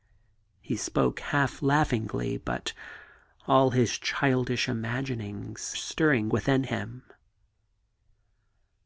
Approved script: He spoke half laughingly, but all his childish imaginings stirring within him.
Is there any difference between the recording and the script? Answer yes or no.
no